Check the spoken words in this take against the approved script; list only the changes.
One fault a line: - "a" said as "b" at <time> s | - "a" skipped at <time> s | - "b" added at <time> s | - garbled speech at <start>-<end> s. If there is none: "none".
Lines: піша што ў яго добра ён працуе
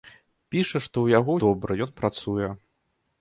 none